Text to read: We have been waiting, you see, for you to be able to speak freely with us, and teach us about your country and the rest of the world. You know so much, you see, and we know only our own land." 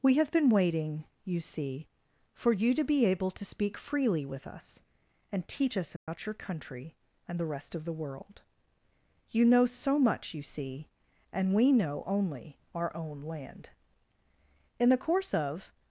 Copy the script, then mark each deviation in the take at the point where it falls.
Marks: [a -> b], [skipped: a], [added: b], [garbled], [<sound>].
We have been waiting, you see, for you to be able to speak freely with us, and teach us about [dropout] your country and the rest of the world. You know so much, you see, and we know only our own land." [added: In the course of]